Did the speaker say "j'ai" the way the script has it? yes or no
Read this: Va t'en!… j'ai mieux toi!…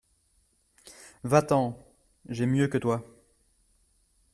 yes